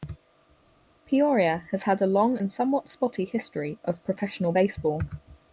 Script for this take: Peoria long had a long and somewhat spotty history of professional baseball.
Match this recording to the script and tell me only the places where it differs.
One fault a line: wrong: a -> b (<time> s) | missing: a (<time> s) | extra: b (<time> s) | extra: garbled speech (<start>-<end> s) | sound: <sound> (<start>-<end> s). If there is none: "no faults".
wrong: long -> has (1.7 s)